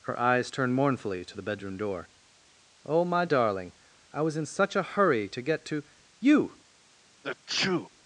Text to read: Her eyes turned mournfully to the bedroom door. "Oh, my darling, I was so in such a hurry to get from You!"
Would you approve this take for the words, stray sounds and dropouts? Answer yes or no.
no